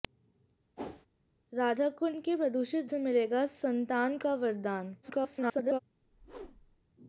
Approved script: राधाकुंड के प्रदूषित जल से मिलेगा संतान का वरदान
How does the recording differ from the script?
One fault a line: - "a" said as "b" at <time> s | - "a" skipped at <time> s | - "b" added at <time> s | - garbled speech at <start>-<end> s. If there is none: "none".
- "जल" skipped at 2.9 s
- garbled speech at 5.0-5.8 s